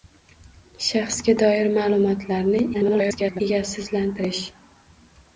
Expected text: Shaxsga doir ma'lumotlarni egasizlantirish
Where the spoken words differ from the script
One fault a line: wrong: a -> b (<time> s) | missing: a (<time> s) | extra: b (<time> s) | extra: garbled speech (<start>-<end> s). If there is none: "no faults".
extra: garbled speech (2.7-3.4 s)